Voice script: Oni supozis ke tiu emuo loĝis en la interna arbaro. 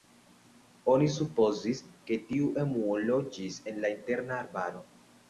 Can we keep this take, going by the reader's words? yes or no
yes